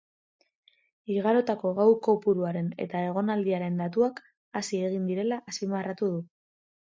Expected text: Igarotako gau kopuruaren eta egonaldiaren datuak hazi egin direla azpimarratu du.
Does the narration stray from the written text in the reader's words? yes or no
no